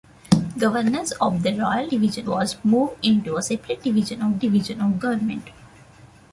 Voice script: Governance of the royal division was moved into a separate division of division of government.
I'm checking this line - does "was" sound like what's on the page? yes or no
yes